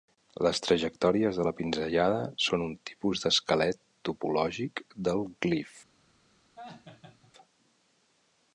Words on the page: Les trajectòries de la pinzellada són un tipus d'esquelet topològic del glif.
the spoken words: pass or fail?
pass